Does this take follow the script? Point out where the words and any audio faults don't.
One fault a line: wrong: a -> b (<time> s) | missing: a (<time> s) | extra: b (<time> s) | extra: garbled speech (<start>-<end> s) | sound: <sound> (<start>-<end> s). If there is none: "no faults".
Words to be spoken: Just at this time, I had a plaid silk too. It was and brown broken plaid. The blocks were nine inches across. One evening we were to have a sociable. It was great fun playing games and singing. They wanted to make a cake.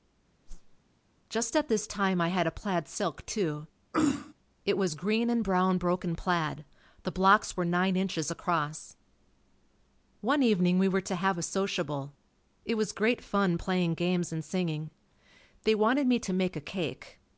sound: whoosh (0.5-0.8 s)
sound: throat clearing (3.9-4.3 s)
extra: green (4.9 s)
extra: me (16.1 s)